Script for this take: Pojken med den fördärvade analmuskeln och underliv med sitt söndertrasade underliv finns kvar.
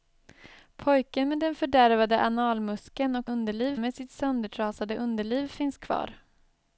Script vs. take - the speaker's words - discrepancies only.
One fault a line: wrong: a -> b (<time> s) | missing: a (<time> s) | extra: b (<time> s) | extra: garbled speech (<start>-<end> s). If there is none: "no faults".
no faults